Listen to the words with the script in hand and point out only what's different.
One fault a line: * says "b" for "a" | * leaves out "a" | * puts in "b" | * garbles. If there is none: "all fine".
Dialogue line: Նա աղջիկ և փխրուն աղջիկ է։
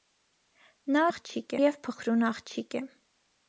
all fine